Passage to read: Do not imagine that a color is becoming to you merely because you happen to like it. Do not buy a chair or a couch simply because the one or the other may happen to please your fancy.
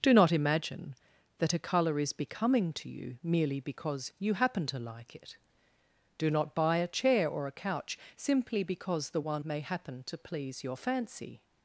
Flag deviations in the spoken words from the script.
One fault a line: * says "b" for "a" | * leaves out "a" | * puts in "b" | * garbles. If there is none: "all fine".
* leaves out "or the other"